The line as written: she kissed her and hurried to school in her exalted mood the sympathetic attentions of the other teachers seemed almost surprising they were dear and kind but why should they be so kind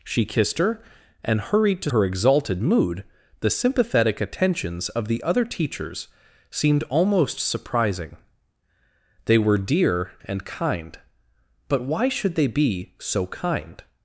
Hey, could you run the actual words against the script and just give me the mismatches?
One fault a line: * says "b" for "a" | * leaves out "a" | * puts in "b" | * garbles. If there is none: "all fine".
* leaves out "school in"